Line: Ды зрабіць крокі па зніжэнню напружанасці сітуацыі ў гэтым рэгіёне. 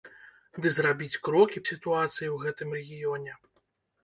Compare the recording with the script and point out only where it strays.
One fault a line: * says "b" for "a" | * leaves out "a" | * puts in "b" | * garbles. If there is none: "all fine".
* leaves out "па зніжэнню напружанасці"